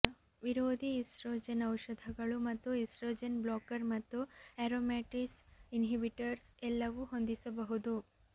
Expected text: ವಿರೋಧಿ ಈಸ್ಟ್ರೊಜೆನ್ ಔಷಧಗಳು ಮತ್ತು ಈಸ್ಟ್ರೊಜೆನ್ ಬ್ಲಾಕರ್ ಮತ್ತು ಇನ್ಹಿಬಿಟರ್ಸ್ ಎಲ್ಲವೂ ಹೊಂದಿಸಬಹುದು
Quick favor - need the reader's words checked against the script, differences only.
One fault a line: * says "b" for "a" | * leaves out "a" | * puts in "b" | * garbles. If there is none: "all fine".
* puts in "ಆರೋಮ್ಯಟೇಸ್"